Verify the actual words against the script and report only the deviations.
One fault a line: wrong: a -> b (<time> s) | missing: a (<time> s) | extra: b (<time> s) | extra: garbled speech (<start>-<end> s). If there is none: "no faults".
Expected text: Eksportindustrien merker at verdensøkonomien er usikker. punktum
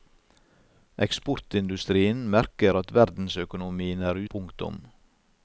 missing: usikker (4.2 s)